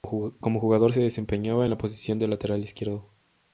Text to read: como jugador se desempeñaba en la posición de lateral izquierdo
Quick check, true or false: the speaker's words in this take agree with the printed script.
true